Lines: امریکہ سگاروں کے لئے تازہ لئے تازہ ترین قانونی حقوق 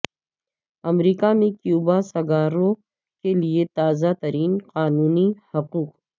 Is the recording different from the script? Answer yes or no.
yes